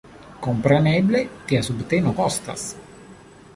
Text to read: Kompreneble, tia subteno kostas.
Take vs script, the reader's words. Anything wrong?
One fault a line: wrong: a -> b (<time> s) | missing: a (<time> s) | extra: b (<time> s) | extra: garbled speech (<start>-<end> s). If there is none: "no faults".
no faults